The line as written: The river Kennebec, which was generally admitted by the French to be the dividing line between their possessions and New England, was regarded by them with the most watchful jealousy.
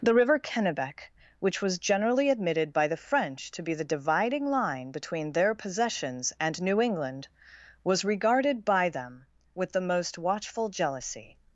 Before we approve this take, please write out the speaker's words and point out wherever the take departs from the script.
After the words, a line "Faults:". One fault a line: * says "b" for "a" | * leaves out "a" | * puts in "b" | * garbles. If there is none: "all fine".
The river Kennebec, which was generally admitted by the French to be the dividing line between their possessions and New England, was regarded by them with the most watchful jealousy.
Faults:
all fine